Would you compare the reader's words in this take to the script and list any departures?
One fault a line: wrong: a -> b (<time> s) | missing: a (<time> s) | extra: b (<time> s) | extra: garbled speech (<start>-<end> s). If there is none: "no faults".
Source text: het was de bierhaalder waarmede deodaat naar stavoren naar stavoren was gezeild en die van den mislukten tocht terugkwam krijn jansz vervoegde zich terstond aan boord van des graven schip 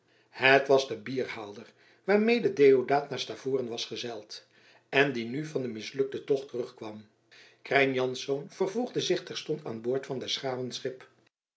missing: naar stavoren (3.7 s)
extra: nu (5.2 s)